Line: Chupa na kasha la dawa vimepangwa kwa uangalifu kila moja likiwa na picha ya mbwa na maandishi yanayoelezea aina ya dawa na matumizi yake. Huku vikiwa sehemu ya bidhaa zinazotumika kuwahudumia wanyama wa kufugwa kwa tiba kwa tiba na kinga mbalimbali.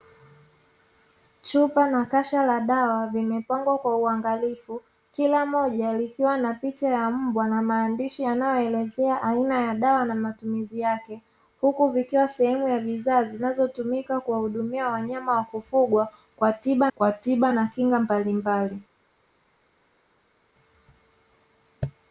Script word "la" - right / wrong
right